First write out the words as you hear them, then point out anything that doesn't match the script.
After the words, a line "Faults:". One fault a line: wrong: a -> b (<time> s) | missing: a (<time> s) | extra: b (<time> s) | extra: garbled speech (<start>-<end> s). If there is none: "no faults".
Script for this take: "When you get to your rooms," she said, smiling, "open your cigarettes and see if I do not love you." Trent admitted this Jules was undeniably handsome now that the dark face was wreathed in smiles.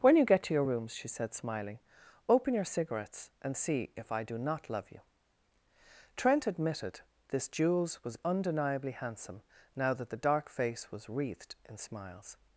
"When you get to your rooms," she said, smiling, "open your cigarettes and see if I do not love you." Trent admitted this Jules was undeniably handsome now that the dark face was wreathed in smiles.
Faults:
no faults